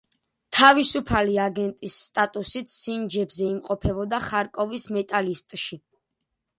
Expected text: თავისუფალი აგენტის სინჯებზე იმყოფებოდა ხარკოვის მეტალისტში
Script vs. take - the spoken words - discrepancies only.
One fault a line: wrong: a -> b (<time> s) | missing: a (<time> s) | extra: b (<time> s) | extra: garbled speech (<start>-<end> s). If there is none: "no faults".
extra: სტატუსით (2.0 s)